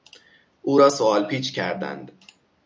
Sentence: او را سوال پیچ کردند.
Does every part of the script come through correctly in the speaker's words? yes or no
yes